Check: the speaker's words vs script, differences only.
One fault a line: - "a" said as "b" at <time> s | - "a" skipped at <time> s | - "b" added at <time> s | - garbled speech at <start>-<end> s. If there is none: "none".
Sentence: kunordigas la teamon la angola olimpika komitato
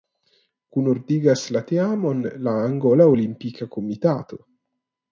none